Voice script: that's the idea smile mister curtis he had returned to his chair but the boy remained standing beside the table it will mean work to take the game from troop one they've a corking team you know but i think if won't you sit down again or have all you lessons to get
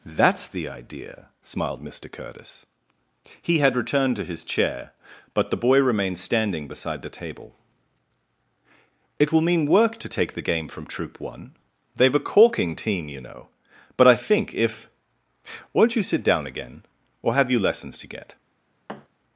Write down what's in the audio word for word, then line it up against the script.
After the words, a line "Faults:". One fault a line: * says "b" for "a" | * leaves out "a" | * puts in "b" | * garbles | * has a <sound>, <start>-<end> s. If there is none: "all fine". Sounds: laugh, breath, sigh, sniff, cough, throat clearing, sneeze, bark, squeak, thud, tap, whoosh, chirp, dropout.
that's the idea smiled mister curtis he had returned to his chair but the boy remained standing beside the table it will mean work to take the game from troop one they've a corking team you know but i think if won't you sit down again or have you lessons to get
Faults:
* says "smiled" for "smile"
* leaves out "all"
* has a thud, 18.9-19.1 s